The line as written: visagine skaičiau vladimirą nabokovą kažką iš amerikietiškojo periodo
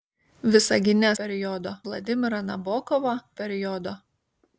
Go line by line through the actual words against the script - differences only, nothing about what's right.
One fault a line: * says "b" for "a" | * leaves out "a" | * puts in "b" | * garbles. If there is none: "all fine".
* says "periodo" for "skaičiau"
* leaves out "kažką iš amerikietiškojo"